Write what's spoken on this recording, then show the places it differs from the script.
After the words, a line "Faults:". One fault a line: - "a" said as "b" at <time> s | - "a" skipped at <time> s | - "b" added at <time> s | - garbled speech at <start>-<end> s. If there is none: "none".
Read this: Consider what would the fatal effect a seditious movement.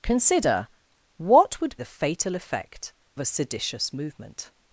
Consider what would the fatal effect a seditious movement.
Faults:
none